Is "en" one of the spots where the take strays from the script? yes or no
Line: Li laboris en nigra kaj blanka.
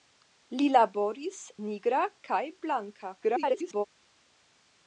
yes